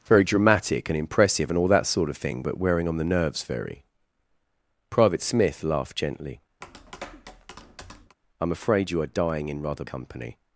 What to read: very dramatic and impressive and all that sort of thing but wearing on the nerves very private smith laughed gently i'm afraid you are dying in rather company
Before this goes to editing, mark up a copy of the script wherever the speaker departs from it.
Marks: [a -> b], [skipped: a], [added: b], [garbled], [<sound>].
very dramatic and impressive and all that sort of thing but wearing on the nerves very private smith laughed gently [tap] i'm afraid you are dying in rather company